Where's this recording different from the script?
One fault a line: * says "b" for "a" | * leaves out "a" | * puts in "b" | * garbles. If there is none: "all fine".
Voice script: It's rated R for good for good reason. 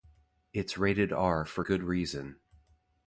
* leaves out "for good"